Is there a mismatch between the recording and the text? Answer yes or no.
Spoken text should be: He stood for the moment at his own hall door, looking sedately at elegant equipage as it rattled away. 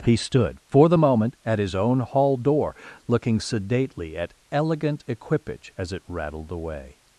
no